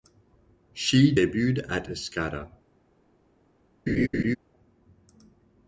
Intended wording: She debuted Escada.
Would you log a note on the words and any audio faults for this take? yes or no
yes